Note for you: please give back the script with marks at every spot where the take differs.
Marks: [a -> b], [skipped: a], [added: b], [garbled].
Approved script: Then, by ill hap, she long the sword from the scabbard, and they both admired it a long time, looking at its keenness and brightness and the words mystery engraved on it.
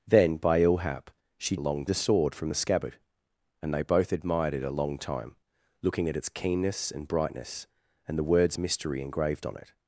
Then, by ill hap, she long the sword from the scabbard, and they both admired it a long time, looking at its keenness and brightness and the words mystery engraved on it.